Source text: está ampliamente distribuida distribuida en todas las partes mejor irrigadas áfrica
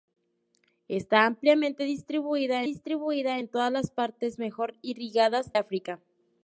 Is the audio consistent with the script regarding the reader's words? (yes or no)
yes